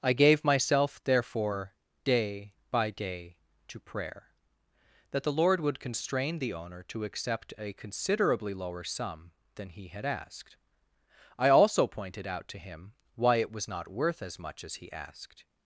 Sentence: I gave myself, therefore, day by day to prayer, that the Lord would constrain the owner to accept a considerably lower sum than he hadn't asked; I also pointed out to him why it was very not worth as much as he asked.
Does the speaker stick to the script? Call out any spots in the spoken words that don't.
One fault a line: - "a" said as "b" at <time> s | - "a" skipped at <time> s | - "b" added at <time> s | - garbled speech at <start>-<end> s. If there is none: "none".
- "hadn't" said as "had" at 9.9 s
- "very" skipped at 13.7 s